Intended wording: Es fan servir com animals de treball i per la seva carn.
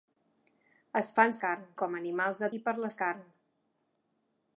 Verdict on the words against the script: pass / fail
fail